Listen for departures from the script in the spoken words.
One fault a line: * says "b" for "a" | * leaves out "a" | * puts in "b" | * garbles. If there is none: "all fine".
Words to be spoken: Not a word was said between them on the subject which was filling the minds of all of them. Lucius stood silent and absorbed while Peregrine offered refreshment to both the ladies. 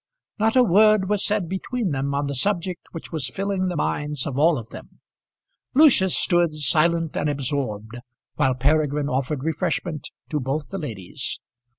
all fine